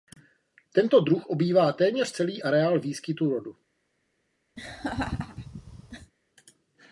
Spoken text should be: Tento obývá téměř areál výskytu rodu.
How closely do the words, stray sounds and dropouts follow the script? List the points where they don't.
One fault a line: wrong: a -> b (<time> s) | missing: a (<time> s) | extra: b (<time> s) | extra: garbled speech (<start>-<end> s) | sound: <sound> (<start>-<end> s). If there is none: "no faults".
extra: druh (1.0 s)
extra: celý (2.1 s)
sound: laugh (4.6-6.1 s)